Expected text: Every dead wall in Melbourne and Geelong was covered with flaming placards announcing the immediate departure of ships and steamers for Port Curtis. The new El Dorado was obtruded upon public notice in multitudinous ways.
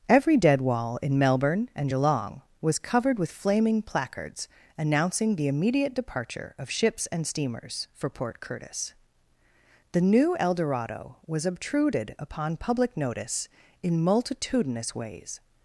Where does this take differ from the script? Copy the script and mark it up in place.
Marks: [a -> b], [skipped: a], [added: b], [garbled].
Every dead wall in Melbourne and Geelong was covered with flaming placards announcing the immediate departure of ships and steamers for Port Curtis. The new El Dorado was obtruded upon public notice in multitudinous ways.